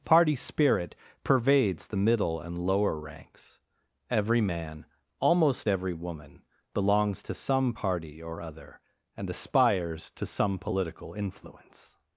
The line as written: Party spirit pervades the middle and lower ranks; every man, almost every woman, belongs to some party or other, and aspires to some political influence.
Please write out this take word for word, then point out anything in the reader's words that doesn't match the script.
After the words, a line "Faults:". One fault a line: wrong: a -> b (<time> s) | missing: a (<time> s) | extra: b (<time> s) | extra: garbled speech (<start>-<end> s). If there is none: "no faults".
Party spirit pervades the middle and lower ranks; every man, almost every woman, belongs to some party or other, and aspires to some political influence.
Faults:
no faults